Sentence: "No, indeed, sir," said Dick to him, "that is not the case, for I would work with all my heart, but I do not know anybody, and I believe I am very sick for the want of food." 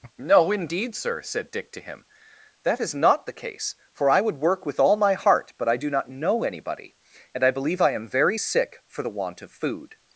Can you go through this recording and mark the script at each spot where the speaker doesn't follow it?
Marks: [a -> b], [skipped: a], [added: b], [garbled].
"No, indeed, sir," said Dick to him, "that is not the case, for I would work with all my heart, but I do not know anybody, and I believe I am very sick for the want of food."